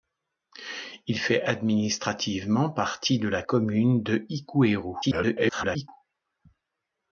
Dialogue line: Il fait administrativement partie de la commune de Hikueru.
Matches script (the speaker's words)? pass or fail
fail